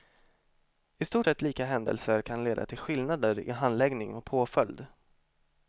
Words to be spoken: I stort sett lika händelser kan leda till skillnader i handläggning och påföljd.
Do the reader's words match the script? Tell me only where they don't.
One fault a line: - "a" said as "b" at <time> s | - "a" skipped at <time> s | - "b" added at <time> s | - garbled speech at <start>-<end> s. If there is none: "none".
none